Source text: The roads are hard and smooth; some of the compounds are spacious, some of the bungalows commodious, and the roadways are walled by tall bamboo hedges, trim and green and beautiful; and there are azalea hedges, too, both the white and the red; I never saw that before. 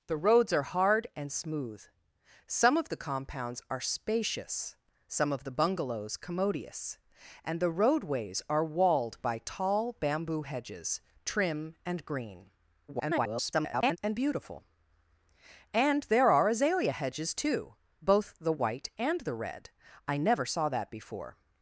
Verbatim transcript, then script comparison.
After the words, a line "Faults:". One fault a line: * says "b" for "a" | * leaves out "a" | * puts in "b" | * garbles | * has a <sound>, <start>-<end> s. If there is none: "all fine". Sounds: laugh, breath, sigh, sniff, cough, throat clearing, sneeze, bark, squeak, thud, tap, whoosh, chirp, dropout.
The roads are hard and smooth; some of the compounds are spacious, some of the bungalows commodious, and the roadways are walled by tall bamboo hedges, trim and green [garbled] and beautiful; and there are azalea hedges, too, both the white and the red; I never saw that before.
Faults:
* garbles